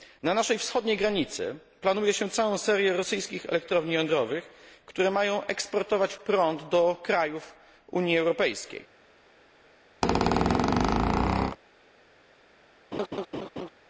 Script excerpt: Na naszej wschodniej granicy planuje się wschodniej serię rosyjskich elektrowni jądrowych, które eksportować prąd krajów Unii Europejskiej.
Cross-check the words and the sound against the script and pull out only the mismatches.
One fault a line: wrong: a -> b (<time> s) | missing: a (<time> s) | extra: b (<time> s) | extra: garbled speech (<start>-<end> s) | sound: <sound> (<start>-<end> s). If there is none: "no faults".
wrong: wschodniej -> całą (2.3 s)
extra: mają (5.1 s)
extra: do (6.7 s)
sound: squeak (10.0-11.6 s)
sound: laugh (12.9-13.7 s)